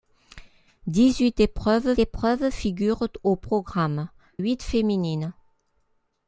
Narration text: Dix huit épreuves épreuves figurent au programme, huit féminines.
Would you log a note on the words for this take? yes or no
no